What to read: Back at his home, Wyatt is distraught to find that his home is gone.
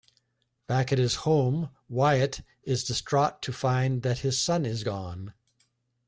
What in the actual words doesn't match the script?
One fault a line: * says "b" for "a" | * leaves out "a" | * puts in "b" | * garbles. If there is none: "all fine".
* says "son" for "home"